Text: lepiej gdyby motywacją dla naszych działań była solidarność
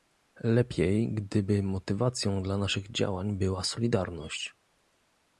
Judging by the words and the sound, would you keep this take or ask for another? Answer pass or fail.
pass